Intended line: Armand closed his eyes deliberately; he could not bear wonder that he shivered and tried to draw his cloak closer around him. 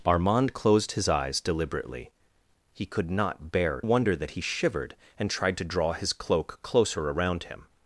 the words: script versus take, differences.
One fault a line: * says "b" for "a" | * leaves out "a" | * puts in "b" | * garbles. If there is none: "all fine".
all fine